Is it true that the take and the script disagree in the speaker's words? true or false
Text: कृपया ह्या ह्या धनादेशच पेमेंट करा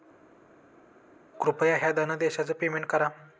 true